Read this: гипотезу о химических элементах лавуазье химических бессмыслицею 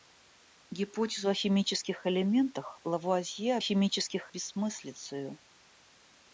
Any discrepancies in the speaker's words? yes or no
no